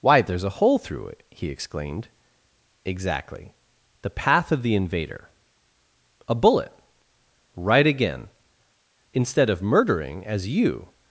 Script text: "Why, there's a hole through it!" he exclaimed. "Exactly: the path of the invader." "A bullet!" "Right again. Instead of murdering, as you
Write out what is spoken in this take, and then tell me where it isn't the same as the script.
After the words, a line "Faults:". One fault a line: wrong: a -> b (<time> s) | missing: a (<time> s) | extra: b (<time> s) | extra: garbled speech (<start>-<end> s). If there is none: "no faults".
"Why, there's a hole through it!" he exclaimed. "Exactly: the path of the invader." "A bullet!" "Right again. Instead of murdering, as you
Faults:
no faults